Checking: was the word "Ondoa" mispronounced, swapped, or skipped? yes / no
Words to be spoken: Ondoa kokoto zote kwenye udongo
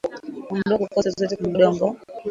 no